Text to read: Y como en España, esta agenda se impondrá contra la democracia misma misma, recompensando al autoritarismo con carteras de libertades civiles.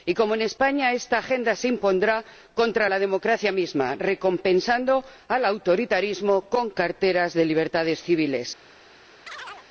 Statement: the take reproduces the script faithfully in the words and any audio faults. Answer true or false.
false